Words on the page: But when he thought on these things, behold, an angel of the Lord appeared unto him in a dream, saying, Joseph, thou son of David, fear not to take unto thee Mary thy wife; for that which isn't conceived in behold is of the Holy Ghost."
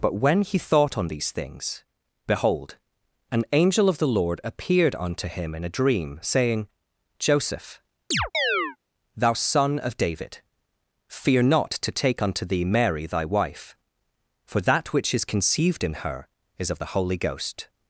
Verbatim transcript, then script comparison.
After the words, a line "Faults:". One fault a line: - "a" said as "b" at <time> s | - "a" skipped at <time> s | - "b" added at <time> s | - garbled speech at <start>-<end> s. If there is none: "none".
But when he thought on these things, behold, an angel of the Lord appeared unto him in a dream, saying, Joseph, thou son of David, fear not to take unto thee Mary thy wife; for that which is conceived in her is of the Holy Ghost."
Faults:
- "isn't" said as "is" at 15.1 s
- "behold" said as "her" at 16.0 s